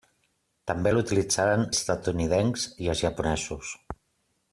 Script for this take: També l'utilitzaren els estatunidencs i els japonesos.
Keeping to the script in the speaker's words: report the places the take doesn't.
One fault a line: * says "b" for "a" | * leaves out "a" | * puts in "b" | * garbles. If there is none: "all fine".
* leaves out "els"